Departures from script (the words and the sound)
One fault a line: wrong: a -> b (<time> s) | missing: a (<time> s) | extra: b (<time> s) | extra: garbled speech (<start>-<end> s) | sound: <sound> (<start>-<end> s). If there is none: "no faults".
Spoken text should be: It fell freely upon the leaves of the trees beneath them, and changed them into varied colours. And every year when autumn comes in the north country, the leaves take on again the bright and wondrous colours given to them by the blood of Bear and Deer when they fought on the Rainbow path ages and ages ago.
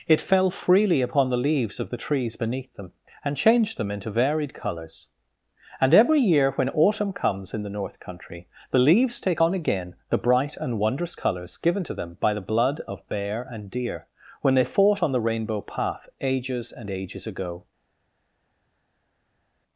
no faults